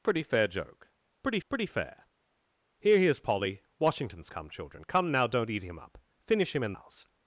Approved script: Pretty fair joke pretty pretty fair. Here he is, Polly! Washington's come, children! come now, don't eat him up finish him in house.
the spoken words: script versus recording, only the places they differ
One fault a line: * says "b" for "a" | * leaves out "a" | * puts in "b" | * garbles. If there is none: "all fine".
all fine